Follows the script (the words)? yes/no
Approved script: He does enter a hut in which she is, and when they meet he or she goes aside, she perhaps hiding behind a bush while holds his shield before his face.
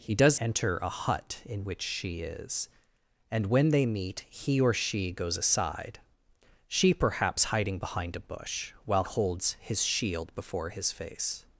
yes